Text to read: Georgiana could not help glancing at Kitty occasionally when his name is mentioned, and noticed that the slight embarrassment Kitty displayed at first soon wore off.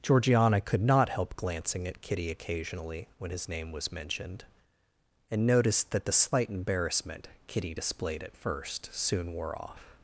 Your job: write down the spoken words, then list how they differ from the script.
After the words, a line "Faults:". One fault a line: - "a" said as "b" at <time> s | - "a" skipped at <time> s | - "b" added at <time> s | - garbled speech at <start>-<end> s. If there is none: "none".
Georgiana could not help glancing at Kitty occasionally when his name was mentioned, and noticed that the slight embarrassment Kitty displayed at first soon wore off.
Faults:
- "is" said as "was" at 3.7 s